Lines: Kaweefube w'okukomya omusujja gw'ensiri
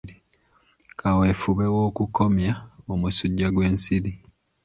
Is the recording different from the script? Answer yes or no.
no